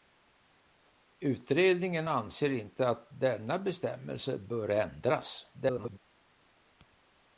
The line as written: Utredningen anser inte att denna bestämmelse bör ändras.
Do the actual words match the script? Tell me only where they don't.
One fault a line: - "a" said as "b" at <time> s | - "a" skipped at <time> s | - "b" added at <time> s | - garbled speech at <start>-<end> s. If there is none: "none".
- garbled speech at 5.5-6.0 s